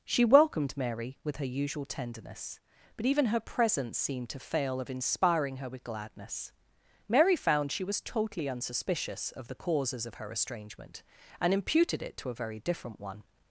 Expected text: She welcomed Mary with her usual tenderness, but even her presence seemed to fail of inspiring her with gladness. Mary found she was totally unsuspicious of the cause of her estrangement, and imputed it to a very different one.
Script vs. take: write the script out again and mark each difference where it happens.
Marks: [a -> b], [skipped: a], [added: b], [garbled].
She welcomed Mary with her usual tenderness, but even her presence seemed to fail of inspiring her with gladness. Mary found she was totally unsuspicious of the [cause -> causes] of her estrangement, and imputed it to a very different one.